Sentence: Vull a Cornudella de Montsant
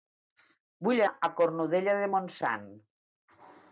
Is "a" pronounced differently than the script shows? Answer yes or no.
no